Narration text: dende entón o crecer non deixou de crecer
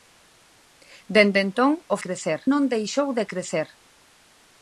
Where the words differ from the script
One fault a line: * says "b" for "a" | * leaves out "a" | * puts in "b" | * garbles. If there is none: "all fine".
all fine